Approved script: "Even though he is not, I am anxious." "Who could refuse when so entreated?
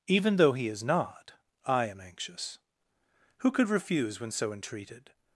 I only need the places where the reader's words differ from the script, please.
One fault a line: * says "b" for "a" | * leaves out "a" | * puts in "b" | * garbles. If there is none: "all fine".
all fine